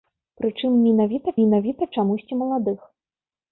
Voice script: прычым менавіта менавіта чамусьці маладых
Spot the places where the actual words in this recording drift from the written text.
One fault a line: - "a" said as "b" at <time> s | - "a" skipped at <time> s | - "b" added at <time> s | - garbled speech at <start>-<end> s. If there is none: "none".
none